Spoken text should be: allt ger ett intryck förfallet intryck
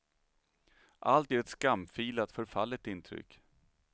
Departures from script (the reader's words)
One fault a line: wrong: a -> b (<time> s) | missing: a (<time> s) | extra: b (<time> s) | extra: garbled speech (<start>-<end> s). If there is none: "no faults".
wrong: intryck -> skamfilat (1.5 s)